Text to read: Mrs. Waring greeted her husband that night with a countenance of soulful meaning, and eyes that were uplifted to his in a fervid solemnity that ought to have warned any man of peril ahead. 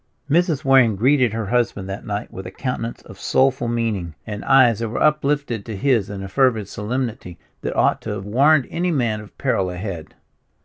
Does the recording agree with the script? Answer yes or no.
yes